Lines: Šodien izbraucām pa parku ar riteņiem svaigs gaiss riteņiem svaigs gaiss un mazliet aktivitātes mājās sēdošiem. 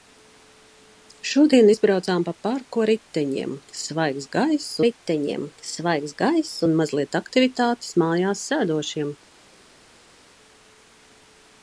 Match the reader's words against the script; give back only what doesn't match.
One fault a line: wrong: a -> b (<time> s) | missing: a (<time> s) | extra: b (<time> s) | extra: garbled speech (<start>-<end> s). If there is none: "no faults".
no faults